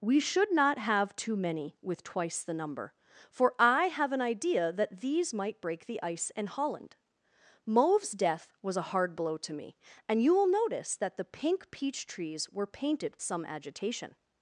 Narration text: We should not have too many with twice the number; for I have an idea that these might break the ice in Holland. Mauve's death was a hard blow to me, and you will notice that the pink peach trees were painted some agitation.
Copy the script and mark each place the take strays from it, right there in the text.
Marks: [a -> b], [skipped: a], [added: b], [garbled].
We should not have too many with twice the number; for I have an idea that these might break the ice in Holland. Mauve's death was a hard blow to me, and you will notice that the pink peach trees were painted some agitation.